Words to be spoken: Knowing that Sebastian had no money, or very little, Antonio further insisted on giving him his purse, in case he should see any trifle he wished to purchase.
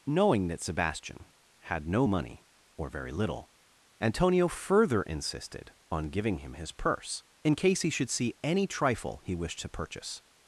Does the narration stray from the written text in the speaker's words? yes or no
no